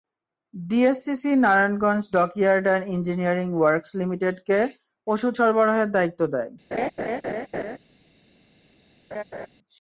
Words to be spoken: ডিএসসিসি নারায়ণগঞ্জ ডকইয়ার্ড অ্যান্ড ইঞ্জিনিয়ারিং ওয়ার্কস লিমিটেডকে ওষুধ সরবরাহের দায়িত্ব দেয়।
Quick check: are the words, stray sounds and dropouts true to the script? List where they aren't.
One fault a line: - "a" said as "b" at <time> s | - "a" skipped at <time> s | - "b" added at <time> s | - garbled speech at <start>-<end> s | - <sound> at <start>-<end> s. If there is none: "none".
- laugh at 6.7-7.8 s
- laugh at 9.1-9.5 s